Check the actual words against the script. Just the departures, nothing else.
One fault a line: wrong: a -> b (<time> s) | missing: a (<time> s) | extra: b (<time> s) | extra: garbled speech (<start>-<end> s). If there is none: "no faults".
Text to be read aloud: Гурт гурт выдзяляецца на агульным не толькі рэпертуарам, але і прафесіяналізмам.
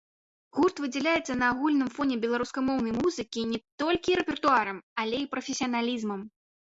missing: гурт (0.8 s)
extra: фоне беларускамоўнай музыкі (2.0 s)